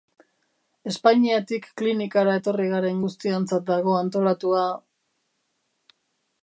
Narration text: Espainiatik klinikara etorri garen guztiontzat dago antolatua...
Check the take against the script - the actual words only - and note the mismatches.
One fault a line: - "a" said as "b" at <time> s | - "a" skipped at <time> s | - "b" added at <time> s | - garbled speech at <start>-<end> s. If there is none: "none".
none